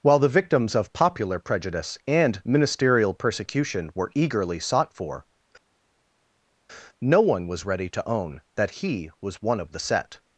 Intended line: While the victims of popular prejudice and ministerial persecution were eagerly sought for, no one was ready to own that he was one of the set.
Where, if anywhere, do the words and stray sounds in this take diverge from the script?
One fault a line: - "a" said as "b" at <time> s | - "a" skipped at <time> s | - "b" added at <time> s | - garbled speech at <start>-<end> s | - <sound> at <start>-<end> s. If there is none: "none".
none